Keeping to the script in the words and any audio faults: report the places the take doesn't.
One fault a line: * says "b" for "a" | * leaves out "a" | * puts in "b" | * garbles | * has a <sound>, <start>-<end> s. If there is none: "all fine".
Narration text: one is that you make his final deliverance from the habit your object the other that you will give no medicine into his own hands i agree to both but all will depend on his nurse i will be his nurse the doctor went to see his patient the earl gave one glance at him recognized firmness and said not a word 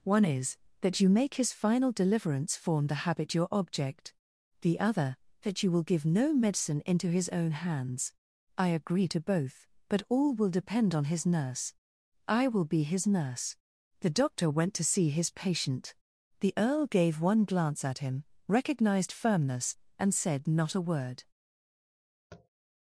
* says "form" for "from"
* has a tap, 22.3-22.5 s